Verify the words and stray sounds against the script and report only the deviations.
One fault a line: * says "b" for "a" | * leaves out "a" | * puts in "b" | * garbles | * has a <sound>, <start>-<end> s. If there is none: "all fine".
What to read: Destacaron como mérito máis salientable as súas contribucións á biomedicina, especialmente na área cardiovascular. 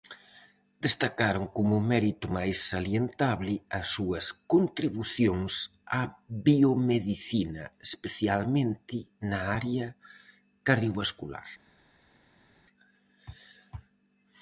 all fine